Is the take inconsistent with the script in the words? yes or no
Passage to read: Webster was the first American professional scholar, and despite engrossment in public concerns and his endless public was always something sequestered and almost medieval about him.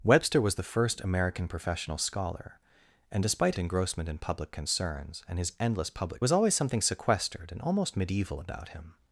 no